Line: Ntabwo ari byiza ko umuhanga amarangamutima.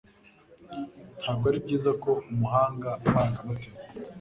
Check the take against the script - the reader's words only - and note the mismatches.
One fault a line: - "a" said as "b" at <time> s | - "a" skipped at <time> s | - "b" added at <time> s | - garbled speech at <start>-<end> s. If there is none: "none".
none